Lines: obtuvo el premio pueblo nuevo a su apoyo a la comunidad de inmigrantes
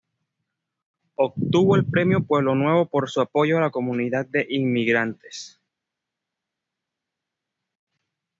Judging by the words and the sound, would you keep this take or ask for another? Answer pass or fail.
fail